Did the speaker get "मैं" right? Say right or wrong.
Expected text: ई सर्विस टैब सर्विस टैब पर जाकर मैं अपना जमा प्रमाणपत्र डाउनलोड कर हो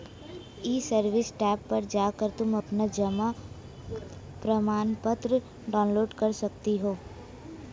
wrong